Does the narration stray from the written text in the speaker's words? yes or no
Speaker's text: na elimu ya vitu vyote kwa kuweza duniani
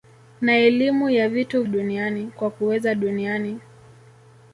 yes